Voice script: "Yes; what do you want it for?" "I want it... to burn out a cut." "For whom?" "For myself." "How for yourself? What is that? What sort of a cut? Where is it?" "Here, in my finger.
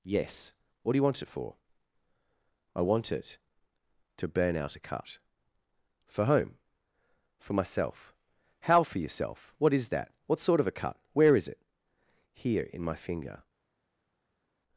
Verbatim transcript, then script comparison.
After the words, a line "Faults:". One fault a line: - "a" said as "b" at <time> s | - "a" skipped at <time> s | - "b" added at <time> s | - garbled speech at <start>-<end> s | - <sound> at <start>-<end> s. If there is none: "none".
"Yes; what do you want it for?" "I want it... to burn out a cut." "For whom?" "For myself." "How for yourself? What is that? What sort of a cut? Where is it?" "Here, in my finger.
Faults:
none